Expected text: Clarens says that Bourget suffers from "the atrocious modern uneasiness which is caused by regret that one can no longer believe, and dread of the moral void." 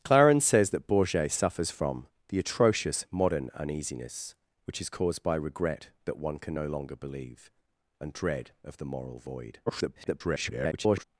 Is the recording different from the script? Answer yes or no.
yes